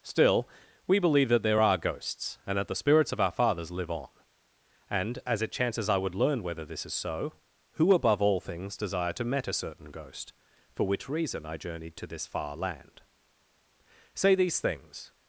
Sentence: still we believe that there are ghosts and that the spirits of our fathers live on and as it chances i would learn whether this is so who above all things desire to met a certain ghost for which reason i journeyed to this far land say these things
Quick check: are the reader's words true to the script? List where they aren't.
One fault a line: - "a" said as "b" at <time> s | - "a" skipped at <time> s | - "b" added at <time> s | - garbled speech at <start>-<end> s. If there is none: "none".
none